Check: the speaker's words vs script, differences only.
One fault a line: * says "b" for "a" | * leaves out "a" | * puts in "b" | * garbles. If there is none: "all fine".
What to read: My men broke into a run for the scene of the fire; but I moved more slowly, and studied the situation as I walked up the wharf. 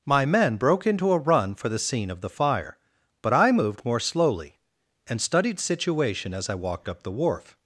* leaves out "the"